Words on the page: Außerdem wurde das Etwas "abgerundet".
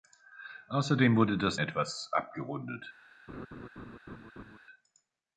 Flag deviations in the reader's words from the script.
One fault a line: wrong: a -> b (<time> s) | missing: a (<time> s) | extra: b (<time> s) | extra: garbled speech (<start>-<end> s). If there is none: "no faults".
no faults